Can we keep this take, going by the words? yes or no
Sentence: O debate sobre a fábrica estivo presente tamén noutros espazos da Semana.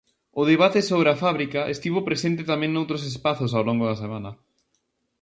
no